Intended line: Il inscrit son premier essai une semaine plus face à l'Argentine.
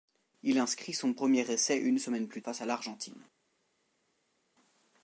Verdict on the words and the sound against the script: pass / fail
pass